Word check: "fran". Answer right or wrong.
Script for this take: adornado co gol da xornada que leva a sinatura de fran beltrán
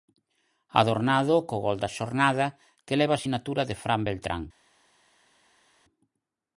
right